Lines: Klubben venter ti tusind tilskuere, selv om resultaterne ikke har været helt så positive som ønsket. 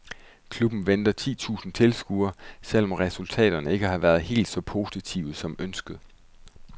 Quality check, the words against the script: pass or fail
pass